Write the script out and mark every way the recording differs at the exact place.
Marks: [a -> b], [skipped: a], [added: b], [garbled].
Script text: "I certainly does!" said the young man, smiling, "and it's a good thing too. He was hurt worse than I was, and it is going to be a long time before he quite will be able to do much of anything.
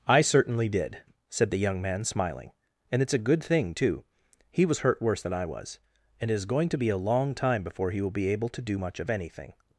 "I certainly [does!" -> did] said the young man, smiling, "and it's a good thing too. He was hurt worse than I was, and it is going to be a long time before he [skipped: quite] will be able to do much of anything.